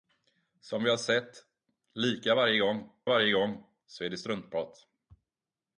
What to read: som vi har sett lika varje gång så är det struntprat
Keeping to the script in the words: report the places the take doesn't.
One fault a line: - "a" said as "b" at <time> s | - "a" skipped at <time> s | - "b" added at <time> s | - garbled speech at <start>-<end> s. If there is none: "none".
- "varje gång" added at 3.1 s